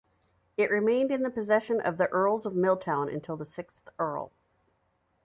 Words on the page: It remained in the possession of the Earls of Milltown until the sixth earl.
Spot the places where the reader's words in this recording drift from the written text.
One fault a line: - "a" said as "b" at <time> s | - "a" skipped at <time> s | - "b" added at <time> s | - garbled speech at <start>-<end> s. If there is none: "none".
none